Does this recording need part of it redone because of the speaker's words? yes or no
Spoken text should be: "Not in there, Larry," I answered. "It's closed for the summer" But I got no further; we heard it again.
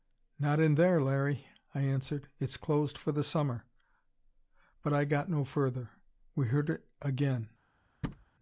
no